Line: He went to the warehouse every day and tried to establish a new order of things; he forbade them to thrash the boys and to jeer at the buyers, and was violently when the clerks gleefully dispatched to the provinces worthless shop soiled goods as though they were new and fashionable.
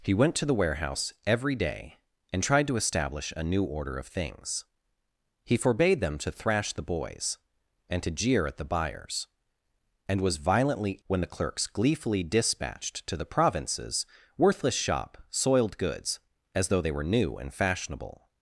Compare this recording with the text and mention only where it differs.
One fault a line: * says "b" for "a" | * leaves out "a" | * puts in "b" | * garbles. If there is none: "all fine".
all fine